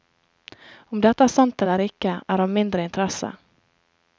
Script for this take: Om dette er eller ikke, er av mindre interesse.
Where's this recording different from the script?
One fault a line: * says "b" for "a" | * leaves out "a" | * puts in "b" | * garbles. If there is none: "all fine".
* puts in "sant"